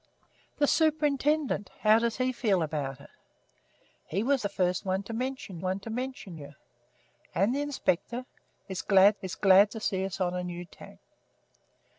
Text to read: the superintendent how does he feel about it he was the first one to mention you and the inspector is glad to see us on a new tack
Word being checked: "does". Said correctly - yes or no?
yes